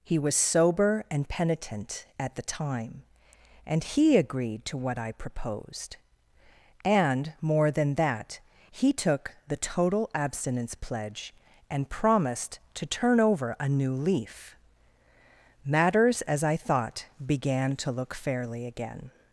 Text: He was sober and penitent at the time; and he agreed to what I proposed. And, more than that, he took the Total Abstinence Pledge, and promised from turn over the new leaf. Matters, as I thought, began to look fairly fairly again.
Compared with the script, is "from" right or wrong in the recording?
wrong